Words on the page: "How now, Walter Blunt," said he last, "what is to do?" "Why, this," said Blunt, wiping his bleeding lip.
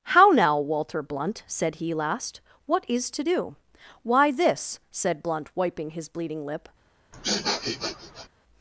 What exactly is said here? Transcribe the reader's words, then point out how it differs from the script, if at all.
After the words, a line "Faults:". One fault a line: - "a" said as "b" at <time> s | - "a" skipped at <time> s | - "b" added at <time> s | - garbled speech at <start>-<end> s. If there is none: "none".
"How now, Walter Blunt," said he last, "what is to do?" "Why, this," said Blunt, wiping his bleeding lip.
Faults:
none